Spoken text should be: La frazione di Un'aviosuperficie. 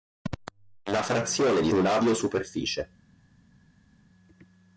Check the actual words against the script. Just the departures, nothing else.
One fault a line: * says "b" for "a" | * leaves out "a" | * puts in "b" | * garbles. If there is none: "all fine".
all fine